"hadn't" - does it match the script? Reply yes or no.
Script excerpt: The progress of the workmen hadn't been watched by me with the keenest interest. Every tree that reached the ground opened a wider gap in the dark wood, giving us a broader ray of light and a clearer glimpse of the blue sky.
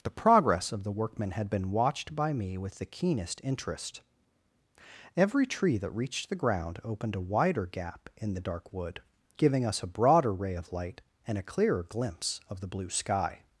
no